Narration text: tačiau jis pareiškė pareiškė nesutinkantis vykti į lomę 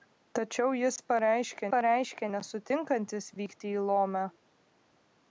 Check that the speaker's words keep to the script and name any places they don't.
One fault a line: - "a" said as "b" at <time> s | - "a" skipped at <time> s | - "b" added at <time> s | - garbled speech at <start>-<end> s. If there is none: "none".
none